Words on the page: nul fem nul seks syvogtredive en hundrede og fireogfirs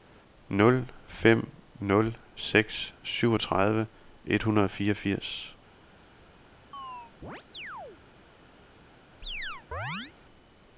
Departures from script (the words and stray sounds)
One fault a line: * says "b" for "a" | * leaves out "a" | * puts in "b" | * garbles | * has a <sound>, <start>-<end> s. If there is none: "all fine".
* says "et" for "en"
* has a chirp, 6.7-8.0 s
* has a chirp, 9.2-10.1 s